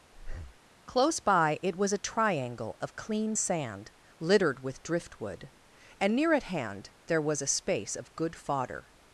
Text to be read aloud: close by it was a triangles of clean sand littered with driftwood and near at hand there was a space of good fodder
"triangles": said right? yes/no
no